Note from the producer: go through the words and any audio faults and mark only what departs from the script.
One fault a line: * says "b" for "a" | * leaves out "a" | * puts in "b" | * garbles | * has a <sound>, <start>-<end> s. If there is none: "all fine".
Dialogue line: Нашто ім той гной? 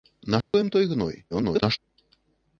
* has a dropout, 0.4-0.5 s
* garbles